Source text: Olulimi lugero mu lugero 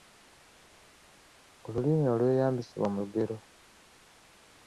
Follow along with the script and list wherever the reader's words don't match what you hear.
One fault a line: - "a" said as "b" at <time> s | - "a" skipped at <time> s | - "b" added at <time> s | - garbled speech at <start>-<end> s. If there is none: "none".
- "lugero" said as "olweyambisibwa" at 2.1 s